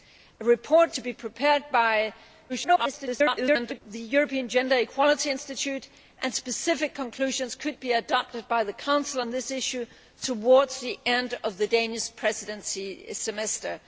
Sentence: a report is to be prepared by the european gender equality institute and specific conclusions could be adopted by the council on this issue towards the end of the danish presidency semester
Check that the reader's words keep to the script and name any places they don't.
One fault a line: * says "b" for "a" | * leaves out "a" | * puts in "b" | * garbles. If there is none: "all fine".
* leaves out "is"
* garbles